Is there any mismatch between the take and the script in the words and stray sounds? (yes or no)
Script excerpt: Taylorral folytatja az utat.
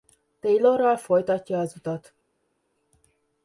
no